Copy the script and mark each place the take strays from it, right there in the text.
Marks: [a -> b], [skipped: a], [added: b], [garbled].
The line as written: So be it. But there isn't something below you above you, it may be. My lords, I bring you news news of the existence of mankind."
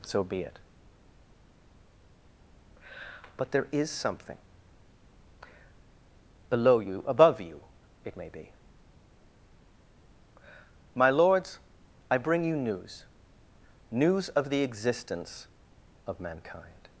So be it. But there [isn't -> is] something below you above you, it may be. My lords, I bring you news news of the existence of mankind."